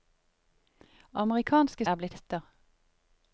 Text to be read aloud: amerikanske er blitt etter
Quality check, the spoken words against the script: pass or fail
pass